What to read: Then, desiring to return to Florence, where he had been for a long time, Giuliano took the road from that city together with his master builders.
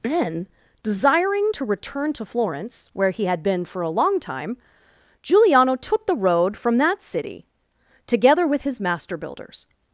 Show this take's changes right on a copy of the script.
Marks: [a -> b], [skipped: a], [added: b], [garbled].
Then, desiring to return to Florence, where he had been for a long time, Giuliano took the road from that city together with his master builders.